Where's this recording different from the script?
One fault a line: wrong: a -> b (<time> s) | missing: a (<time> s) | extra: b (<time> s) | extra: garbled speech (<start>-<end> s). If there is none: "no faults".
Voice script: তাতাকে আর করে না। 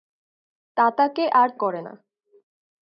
no faults